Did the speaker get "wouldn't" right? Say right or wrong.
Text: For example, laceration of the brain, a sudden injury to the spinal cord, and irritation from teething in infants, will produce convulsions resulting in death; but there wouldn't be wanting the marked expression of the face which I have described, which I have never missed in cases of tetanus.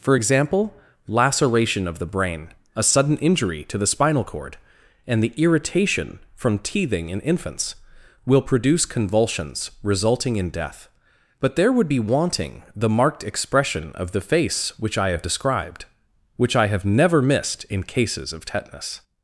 wrong